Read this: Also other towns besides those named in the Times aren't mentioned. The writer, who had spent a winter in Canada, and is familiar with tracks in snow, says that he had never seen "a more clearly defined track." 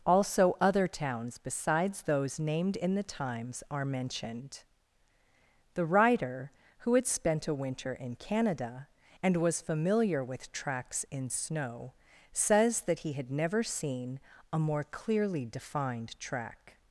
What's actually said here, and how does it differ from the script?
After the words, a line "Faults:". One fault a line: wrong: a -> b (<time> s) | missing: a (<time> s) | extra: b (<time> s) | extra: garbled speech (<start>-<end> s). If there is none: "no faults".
Also other towns besides those named in the Times are mentioned. The writer, who had spent a winter in Canada, and was familiar with tracks in snow, says that he had never seen "a more clearly defined track."
Faults:
wrong: aren't -> are (3.7 s)
wrong: is -> was (9.4 s)